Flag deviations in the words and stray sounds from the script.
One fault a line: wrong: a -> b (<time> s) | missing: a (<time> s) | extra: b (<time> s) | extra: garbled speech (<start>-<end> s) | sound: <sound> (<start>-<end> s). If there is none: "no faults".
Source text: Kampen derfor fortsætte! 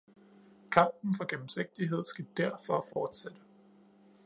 extra: for gennemsigtighed skal (1.1 s)
sound: dropout (2.9-3.0 s)